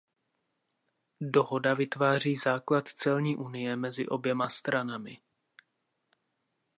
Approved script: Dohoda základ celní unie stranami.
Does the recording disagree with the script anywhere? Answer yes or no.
yes